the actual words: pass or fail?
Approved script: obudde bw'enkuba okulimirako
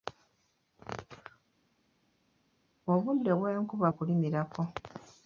pass